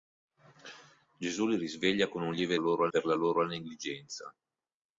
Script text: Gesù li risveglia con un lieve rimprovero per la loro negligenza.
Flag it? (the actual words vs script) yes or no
yes